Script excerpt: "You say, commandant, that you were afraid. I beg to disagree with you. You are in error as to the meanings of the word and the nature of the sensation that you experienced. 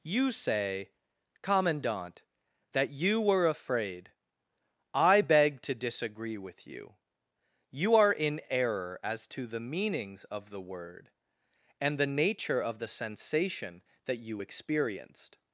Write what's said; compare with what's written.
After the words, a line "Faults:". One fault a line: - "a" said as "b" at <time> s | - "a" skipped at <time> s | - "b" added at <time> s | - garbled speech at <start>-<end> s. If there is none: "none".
"You say, commandant, that you were afraid. I beg to disagree with you. You are in error as to the meanings of the word and the nature of the sensation that you experienced.
Faults:
none